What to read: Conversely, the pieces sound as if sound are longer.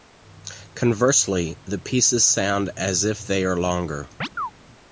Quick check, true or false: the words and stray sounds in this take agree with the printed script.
false